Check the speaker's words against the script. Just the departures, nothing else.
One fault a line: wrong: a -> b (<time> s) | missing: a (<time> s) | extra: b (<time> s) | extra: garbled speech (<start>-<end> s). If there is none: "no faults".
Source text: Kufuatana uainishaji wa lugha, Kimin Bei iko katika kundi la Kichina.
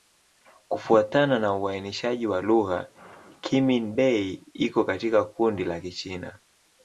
extra: na (1.4 s)